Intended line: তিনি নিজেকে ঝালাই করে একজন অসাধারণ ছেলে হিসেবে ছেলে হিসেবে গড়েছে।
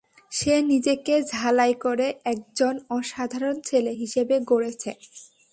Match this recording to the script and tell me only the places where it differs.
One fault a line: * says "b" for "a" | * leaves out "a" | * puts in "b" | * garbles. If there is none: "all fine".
* says "সে" for "তিনি"
* leaves out "ছেলে হিসেবে"